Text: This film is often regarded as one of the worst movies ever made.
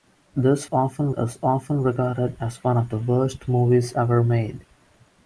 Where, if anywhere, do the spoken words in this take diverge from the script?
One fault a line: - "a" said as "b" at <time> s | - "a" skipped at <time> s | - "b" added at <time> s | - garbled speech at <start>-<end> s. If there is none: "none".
- "film" said as "often" at 0.7 s